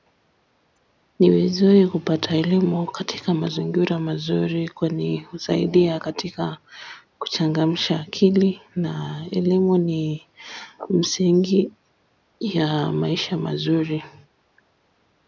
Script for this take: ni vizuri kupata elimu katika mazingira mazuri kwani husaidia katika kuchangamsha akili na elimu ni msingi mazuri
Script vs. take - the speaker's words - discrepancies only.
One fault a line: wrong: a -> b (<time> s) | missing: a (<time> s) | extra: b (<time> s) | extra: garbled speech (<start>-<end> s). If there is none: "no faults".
extra: ya maisha (12.4 s)